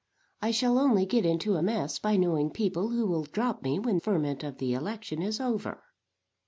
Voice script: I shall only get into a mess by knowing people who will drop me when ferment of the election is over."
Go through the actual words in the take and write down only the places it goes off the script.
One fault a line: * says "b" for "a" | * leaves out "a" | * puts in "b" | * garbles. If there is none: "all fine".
all fine